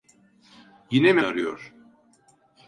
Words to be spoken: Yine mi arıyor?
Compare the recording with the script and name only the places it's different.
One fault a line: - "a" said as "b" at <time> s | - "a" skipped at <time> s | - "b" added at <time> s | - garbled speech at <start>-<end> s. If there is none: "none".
none